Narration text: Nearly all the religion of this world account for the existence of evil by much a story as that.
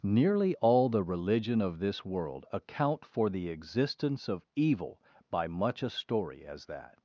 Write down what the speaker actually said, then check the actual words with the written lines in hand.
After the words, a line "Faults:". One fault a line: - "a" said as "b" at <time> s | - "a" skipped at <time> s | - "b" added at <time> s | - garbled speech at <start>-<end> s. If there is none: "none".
Nearly all the religion of this world account for the existence of evil by much a story as that.
Faults:
none